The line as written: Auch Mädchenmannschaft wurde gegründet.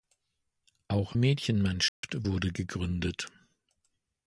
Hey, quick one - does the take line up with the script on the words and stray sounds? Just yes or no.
no